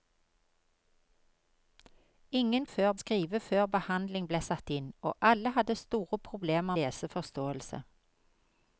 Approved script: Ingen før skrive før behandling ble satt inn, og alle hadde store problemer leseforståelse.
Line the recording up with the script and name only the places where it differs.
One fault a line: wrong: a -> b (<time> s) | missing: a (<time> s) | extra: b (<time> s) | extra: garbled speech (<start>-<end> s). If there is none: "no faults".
no faults